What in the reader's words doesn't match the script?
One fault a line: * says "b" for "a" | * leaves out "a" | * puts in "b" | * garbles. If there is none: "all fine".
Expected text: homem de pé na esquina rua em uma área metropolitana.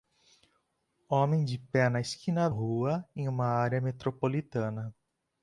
all fine